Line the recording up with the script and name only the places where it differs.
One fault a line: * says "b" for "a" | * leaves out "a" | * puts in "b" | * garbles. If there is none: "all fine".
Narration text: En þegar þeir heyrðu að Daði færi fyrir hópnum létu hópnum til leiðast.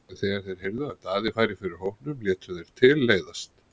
* says "þeir" for "hópnum"